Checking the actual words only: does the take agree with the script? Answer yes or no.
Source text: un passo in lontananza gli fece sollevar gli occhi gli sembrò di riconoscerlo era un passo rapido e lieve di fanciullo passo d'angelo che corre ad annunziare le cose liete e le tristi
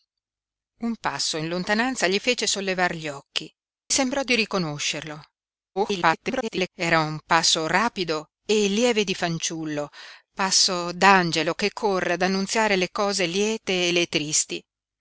no